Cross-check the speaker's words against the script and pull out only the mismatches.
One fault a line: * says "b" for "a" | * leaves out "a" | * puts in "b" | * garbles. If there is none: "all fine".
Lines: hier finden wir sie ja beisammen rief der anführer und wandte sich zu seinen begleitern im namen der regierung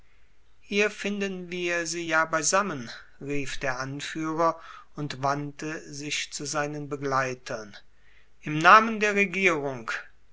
all fine